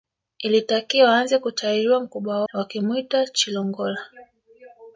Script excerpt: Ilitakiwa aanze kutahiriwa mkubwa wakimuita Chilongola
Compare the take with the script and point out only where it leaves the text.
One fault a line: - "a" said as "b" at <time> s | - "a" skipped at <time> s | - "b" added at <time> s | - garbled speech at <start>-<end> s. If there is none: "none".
none